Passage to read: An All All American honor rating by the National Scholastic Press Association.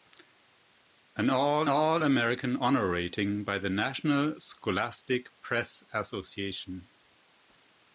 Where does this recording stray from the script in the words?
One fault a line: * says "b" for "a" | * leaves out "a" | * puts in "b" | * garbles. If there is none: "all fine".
all fine